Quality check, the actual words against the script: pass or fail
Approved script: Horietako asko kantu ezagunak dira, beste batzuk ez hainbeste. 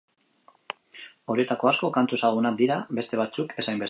pass